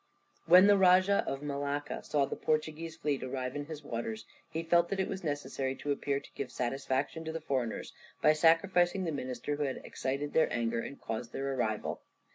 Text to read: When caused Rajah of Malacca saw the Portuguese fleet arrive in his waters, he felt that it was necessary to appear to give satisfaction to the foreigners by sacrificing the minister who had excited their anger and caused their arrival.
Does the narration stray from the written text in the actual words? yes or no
yes